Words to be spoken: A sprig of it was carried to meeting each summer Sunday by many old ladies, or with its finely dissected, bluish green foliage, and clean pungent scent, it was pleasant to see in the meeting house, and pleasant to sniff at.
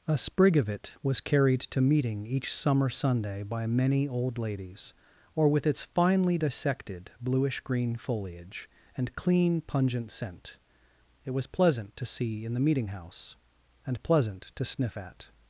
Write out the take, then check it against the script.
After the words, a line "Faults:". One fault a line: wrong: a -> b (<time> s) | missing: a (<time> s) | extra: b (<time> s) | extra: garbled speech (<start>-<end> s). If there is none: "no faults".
A sprig of it was carried to meeting each summer Sunday by many old ladies, or with its finely dissected, bluish green foliage, and clean pungent scent, it was pleasant to see in the meeting house, and pleasant to sniff at.
Faults:
no faults